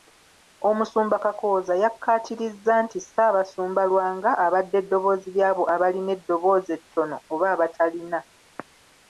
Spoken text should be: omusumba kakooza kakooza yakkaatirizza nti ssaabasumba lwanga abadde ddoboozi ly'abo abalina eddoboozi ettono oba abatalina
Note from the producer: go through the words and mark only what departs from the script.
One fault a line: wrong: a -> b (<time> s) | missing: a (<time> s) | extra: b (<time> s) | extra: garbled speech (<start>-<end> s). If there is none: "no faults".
missing: kakooza (1.7 s)